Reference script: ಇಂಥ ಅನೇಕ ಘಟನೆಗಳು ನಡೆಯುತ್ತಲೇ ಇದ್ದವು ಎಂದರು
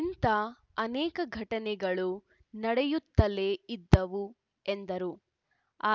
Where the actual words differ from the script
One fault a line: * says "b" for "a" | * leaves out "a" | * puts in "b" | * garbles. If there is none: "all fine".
all fine